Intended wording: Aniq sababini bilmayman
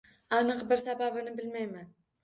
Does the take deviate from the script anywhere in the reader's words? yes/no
yes